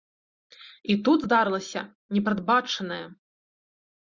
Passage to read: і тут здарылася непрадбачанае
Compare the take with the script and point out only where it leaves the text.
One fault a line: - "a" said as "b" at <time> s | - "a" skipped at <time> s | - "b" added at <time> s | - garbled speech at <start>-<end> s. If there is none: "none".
none